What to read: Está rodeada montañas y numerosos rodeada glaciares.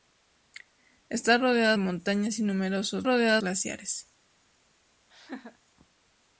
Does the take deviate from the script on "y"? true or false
false